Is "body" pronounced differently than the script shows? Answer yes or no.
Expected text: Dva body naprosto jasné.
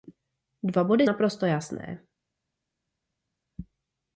no